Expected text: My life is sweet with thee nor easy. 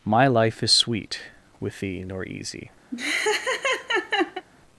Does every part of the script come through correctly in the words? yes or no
yes